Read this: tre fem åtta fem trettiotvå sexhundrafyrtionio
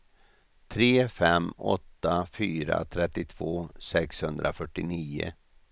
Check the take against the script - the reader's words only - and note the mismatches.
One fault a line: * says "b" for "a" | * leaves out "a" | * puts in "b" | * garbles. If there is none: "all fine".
* says "fyra" for "fem"